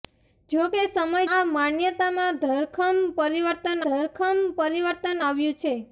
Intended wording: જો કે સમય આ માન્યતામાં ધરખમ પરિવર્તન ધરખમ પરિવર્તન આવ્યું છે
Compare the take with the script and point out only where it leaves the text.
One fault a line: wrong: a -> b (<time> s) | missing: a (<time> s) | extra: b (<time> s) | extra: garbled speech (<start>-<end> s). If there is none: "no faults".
no faults